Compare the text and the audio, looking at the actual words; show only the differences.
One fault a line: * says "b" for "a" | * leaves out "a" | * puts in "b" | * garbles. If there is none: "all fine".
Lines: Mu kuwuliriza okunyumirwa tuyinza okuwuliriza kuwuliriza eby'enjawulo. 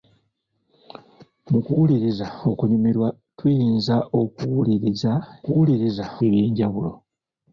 all fine